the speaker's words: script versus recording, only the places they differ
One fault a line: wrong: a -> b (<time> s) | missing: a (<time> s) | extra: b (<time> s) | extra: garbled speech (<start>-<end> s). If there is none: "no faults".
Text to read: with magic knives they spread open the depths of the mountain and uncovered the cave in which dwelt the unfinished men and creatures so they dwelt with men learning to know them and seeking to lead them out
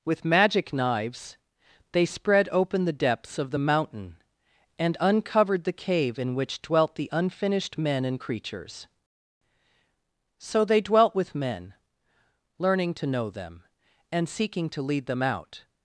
no faults